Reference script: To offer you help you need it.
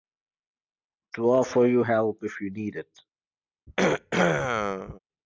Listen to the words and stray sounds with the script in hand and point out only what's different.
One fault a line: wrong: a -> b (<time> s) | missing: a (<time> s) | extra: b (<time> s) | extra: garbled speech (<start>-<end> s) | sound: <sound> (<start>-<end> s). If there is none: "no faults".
extra: if (2.2 s)
sound: throat clearing (3.7-5.0 s)